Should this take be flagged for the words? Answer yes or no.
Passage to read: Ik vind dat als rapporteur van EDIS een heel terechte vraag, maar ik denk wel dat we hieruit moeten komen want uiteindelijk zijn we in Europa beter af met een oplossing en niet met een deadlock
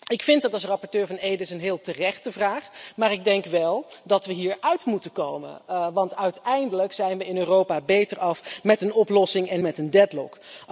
yes